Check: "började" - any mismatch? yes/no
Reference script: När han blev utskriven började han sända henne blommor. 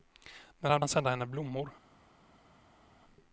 yes